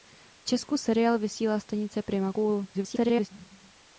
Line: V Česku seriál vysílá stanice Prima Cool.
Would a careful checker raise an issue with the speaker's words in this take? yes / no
yes